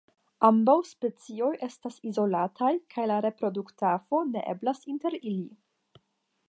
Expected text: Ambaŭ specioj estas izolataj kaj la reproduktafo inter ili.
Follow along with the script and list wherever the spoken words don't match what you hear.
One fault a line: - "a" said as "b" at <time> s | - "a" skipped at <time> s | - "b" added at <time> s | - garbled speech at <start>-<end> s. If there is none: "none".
- "ne eblas" added at 4.3 s